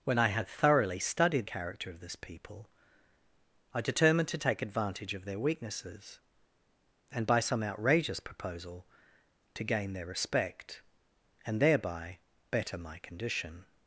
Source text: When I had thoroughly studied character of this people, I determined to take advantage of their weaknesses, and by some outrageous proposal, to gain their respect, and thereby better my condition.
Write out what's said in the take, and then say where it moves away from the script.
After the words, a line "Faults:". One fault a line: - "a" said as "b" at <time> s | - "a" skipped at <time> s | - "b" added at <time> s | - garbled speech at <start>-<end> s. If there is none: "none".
When I had thoroughly studied character of this people, I determined to take advantage of their weaknesses, and by some outrageous proposal, to gain their respect, and thereby better my condition.
Faults:
none